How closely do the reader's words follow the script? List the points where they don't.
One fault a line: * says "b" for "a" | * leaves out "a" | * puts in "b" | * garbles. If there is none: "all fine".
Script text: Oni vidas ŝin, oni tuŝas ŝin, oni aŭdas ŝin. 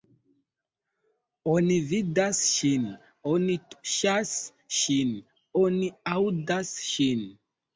all fine